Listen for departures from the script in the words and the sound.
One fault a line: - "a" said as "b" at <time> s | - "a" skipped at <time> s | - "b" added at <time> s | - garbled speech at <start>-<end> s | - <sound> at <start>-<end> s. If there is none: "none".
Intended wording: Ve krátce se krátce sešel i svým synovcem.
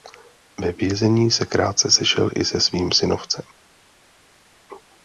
- "krátce" said as "vězení" at 0.7 s
- "se" added at 2.4 s